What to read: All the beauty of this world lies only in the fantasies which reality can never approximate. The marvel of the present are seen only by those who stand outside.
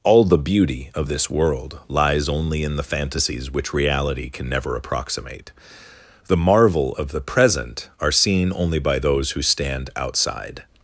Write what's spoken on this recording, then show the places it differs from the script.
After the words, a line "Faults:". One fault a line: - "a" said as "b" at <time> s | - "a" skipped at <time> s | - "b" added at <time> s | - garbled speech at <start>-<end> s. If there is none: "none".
All the beauty of this world lies only in the fantasies which reality can never approximate. The marvel of the present are seen only by those who stand outside.
Faults:
none